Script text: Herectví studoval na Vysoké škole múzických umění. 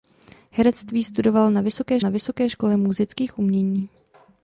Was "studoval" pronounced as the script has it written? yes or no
yes